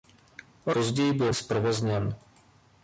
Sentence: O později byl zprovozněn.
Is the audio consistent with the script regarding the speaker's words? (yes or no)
yes